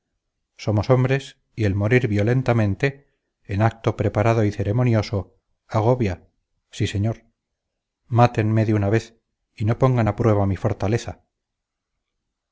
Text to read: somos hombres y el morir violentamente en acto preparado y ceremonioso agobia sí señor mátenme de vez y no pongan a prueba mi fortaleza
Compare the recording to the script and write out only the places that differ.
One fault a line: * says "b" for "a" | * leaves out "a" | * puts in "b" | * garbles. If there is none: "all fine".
* puts in "una"